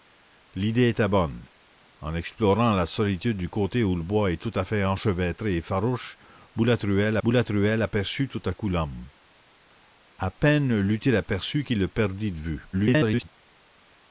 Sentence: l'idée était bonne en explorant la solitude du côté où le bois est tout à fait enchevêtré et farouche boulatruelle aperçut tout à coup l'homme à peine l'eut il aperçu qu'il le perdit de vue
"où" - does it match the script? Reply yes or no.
yes